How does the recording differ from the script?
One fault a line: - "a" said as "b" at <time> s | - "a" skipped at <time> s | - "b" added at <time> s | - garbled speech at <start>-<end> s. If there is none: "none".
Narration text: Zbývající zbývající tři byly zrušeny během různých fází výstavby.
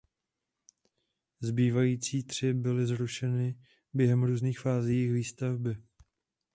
- "zbývající" skipped at 2.2 s
- "jejich" added at 4.9 s